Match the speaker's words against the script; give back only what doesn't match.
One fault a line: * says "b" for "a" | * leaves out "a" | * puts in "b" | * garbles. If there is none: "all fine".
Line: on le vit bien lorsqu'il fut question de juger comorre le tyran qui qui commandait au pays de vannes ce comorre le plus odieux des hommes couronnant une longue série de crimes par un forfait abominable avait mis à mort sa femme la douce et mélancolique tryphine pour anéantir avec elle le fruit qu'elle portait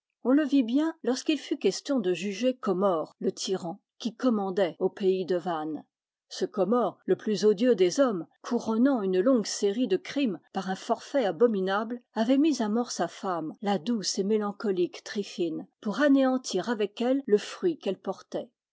* leaves out "qui"